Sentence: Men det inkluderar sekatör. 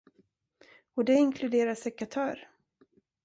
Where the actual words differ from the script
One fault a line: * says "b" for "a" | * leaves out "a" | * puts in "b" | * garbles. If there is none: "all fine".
* says "Och" for "Men"